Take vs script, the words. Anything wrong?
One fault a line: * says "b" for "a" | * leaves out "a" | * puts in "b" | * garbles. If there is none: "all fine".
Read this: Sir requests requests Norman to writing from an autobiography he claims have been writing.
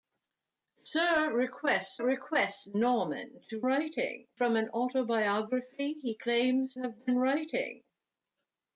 all fine